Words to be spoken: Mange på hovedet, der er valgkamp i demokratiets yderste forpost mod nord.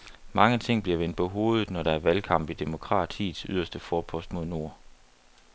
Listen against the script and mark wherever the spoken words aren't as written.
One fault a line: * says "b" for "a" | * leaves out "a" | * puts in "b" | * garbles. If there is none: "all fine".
* puts in "ting bliver vendt"
* puts in "når"